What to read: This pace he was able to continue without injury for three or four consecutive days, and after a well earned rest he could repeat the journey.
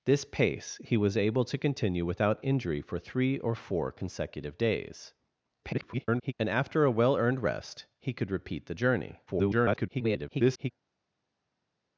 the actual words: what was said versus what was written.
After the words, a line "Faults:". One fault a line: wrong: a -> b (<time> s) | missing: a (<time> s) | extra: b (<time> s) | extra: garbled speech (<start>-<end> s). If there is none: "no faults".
This pace he was able to continue without injury for three or four consecutive days, [garbled] and after a well earned rest he could repeat the journey. [garbled]
Faults:
extra: garbled speech (5.6-6.3 s)
extra: garbled speech (9.3-10.7 s)